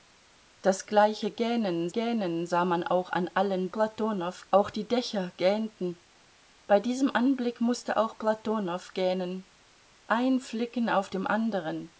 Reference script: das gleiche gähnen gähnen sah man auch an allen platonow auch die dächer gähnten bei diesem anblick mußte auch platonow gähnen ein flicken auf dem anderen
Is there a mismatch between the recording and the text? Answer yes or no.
no